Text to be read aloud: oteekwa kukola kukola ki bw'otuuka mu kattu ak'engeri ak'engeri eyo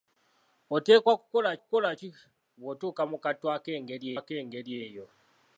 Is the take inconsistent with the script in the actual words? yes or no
no